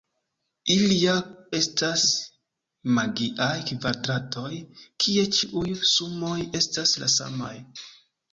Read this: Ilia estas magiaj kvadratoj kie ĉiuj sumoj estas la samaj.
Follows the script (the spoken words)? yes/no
yes